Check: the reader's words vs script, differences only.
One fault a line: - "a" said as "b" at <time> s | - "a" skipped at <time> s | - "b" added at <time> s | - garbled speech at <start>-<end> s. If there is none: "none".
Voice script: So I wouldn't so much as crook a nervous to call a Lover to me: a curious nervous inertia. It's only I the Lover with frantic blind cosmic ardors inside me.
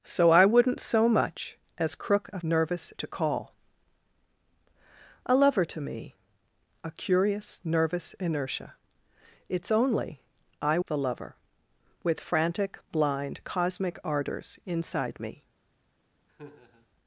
none